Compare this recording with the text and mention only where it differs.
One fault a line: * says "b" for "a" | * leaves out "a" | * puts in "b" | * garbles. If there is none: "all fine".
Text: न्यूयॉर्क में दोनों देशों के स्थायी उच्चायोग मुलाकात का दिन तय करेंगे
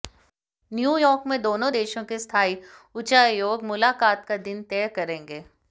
all fine